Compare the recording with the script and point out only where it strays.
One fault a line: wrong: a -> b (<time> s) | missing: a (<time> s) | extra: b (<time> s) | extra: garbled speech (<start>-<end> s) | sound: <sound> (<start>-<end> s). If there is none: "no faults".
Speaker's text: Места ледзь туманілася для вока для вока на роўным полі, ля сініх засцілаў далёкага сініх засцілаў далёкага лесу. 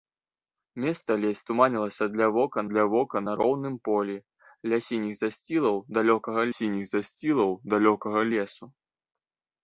no faults